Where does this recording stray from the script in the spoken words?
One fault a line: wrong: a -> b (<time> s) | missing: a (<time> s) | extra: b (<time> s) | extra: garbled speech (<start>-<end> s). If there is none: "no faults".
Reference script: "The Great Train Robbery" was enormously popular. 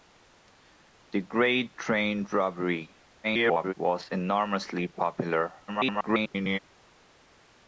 extra: garbled speech (3.2-3.7 s)
extra: garbled speech (5.7-6.6 s)